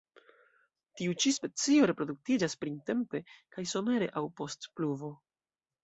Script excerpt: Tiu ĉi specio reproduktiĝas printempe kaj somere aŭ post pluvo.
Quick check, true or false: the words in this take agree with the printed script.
true